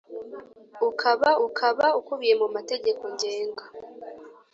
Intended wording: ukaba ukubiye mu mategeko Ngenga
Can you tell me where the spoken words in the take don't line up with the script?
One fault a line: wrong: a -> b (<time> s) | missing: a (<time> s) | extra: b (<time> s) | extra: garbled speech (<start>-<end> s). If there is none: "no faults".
extra: ukaba (1.5 s)